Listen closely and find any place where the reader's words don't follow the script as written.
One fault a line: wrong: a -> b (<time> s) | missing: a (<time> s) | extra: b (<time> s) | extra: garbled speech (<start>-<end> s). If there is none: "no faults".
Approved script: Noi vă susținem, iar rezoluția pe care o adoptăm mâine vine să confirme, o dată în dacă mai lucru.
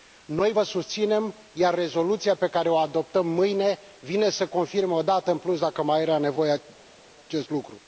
extra: plus (5.4 s)
extra: era nevoie acest (6.0 s)